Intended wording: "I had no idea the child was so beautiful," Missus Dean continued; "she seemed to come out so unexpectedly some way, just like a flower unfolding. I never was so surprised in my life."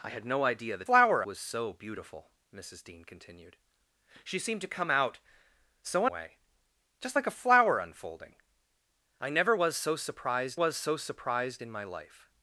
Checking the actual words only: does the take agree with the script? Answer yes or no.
no